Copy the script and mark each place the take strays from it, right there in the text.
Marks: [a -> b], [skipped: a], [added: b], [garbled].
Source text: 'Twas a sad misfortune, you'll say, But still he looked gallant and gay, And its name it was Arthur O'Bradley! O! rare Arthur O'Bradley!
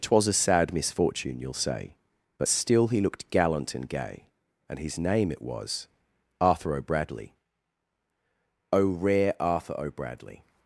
'Twas a sad misfortune, you'll say, But still he looked gallant and gay, And [its -> his] name it was Arthur O'Bradley! O! rare Arthur O'Bradley!